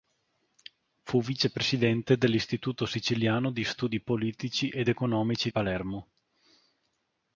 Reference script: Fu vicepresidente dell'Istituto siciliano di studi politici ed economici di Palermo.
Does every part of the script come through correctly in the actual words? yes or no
no